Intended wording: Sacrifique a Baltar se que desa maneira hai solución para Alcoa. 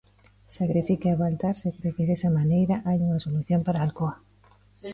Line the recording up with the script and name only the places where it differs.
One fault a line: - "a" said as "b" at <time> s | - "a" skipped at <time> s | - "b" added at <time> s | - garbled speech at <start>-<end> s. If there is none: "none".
- "cre" added at 1.8 s
- "unha" added at 3.1 s